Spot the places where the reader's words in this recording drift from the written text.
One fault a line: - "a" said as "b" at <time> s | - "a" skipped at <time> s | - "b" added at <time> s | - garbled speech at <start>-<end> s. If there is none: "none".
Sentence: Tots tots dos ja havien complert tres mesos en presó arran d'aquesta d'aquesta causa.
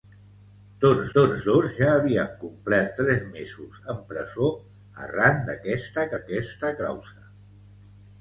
none